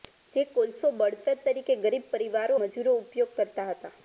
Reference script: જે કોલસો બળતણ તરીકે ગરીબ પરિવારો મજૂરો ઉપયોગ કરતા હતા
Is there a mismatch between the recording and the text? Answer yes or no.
no